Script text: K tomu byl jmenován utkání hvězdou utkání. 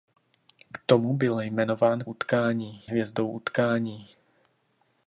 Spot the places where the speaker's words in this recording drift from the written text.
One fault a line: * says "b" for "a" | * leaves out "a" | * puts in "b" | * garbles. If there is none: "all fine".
all fine